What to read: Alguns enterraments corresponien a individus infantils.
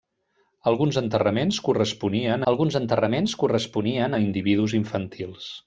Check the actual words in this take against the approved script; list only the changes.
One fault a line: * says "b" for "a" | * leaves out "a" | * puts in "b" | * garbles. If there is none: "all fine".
* puts in "alguns enterraments corresponien"